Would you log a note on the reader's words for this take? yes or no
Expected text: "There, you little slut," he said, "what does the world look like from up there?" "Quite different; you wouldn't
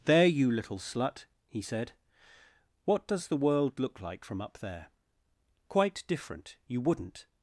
no